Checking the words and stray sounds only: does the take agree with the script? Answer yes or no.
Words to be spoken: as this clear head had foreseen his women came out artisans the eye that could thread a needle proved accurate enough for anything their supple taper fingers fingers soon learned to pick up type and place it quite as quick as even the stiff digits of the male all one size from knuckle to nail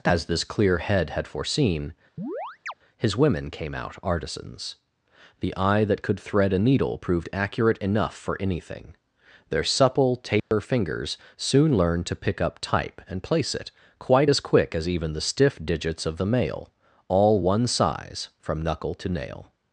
no